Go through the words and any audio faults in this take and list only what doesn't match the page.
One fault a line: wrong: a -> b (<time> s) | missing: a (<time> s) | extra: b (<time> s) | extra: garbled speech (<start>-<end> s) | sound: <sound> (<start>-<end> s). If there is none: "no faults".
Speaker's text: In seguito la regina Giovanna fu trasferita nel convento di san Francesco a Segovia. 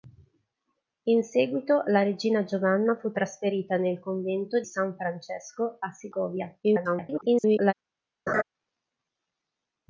missing: di (4.6 s)
extra: garbled speech (6.6-7.7 s)
sound: laugh (8.3-8.4 s)